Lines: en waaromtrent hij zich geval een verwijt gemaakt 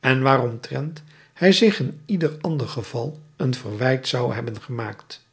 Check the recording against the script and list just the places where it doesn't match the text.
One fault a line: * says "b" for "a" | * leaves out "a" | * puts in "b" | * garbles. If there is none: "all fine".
* puts in "in ieder ander"
* puts in "zou hebben"